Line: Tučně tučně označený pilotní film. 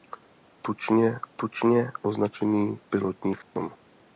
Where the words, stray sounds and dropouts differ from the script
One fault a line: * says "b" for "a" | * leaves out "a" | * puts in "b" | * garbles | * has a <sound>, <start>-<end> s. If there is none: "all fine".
* has a dropout, 3.4-3.6 s